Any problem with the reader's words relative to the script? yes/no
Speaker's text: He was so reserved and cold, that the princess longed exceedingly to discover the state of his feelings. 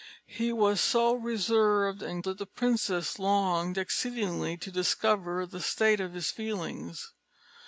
yes